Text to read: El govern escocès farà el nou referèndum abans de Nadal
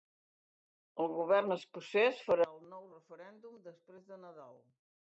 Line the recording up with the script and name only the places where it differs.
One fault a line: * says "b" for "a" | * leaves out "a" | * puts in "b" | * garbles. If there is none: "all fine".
* says "després" for "abans"